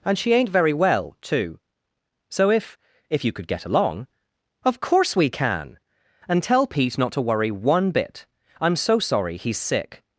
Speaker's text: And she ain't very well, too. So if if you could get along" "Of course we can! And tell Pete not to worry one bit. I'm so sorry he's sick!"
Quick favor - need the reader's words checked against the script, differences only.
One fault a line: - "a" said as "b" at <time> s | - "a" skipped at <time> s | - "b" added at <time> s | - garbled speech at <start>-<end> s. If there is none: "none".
none